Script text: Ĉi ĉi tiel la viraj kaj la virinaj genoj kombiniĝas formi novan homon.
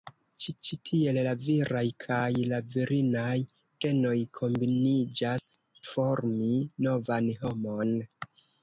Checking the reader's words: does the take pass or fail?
pass